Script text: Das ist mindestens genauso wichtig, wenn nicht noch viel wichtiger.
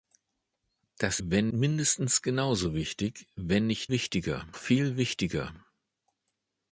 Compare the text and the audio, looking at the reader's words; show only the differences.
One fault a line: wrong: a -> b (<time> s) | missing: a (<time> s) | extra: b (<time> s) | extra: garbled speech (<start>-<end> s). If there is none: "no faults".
wrong: ist -> wenn (1.2 s)
wrong: noch -> wichtiger (3.9 s)